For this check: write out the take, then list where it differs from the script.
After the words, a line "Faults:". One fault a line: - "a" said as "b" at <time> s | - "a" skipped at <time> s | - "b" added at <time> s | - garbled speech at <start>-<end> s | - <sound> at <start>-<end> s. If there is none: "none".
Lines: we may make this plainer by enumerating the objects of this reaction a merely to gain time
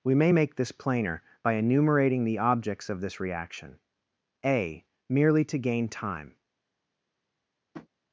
we may make this plainer by enumerating the objects of this reaction a merely to gain time
Faults:
- tap at 7.7-7.9 s